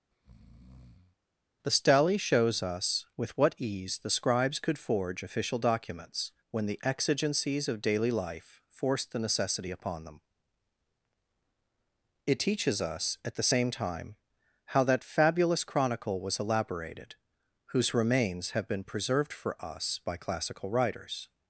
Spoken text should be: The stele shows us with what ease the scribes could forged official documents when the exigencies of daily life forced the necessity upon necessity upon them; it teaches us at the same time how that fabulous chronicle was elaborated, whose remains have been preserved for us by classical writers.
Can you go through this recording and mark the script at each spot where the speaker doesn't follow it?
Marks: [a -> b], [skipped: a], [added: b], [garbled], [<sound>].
[breath] The stele shows us with what ease the scribes could [forged -> forge] official documents when the exigencies of daily life forced the necessity upon [skipped: necessity upon] them; it teaches us at the same time how that fabulous chronicle was elaborated, whose remains have been preserved for us by classical writers.